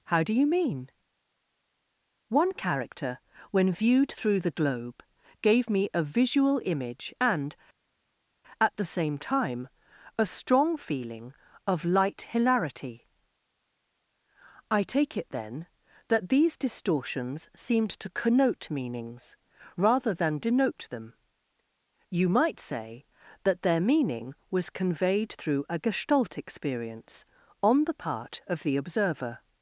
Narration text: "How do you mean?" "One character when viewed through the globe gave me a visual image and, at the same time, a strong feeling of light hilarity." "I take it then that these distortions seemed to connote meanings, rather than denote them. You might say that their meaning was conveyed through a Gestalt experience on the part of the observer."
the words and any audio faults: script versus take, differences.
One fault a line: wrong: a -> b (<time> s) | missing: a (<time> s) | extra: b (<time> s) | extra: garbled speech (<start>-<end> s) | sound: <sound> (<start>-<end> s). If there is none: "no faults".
no faults